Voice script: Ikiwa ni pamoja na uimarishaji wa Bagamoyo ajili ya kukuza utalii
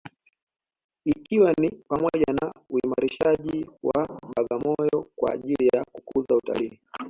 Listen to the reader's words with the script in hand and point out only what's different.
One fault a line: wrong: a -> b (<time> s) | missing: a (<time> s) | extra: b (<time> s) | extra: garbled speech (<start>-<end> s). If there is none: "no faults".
extra: kwa (5.1 s)